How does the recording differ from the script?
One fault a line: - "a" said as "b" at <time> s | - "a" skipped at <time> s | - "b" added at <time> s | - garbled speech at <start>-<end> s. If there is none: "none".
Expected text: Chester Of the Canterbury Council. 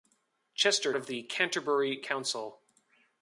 none